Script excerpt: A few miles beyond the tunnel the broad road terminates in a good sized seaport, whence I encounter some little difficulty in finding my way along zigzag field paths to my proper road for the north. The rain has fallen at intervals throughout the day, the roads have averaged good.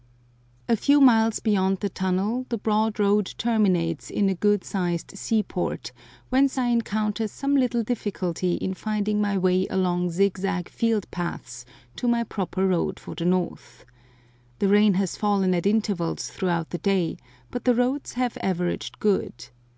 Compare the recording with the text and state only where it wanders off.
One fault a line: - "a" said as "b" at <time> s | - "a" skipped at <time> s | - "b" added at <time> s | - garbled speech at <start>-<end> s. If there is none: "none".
- "but" added at 17.5 s